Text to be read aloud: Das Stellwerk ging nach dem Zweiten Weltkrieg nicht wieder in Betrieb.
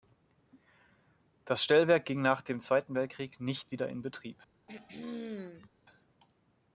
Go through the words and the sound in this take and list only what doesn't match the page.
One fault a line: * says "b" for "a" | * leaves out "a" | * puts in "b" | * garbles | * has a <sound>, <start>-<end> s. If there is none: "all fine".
* has a throat clearing, 4.7-5.7 s